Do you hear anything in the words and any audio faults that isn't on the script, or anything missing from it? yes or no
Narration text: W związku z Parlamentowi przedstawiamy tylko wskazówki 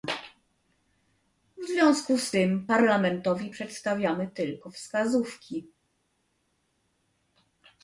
yes